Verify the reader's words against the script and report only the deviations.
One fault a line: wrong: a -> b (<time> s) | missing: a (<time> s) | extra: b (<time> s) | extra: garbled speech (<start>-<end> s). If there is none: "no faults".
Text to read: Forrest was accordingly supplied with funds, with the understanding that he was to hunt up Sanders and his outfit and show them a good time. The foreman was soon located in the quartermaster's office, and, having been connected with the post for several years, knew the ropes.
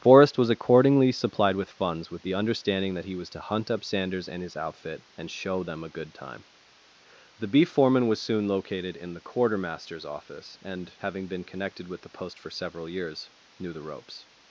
extra: beef (7.5 s)